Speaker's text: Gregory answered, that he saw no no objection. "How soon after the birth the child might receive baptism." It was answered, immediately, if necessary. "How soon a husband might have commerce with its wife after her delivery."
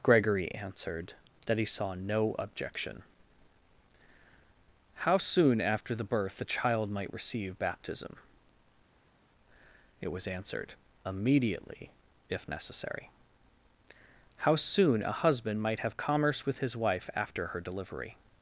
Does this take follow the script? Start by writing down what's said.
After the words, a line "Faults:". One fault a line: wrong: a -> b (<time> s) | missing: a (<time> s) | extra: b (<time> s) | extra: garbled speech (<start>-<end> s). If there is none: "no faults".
Gregory answered, that he saw no objection. "How soon after the birth the child might receive baptism." It was answered, immediately, if necessary. "How soon a husband might have commerce with his wife after her delivery."
Faults:
missing: no (2.4 s)
wrong: its -> his (16.6 s)